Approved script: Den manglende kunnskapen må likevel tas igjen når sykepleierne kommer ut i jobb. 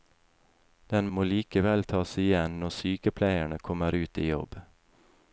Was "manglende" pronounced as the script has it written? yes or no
no